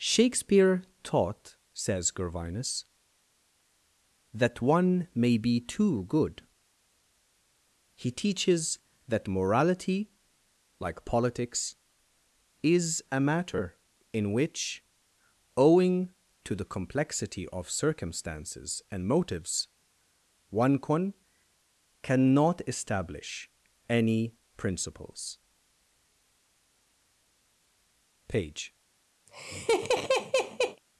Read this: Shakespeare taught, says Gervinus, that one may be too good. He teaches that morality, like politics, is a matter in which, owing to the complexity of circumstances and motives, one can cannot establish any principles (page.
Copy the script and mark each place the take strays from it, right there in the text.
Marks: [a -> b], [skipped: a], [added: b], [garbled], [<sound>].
Shakespeare taught, says Gervinus, that one may be too good. He teaches that morality, like politics, is a matter in which, owing to the complexity of circumstances and motives, one can cannot establish any principles (page. [laugh]